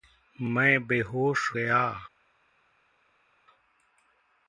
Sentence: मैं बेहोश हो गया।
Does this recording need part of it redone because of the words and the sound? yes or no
yes